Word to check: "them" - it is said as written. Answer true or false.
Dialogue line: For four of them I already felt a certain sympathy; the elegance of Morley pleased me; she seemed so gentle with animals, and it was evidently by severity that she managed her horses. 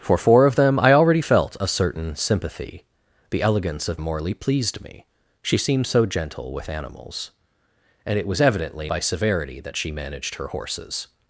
true